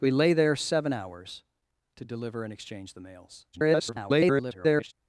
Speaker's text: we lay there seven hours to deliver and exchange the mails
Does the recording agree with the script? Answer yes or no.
no